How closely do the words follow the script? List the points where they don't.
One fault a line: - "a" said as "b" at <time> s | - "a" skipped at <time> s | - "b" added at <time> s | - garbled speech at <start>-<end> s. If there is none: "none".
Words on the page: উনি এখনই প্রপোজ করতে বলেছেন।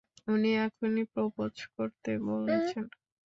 none